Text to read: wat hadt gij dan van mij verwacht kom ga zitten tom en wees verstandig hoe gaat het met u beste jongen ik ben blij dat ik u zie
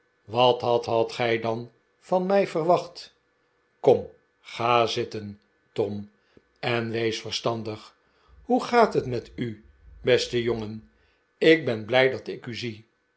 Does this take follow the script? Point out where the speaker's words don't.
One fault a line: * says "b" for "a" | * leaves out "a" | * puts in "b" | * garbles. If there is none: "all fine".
* puts in "hadt"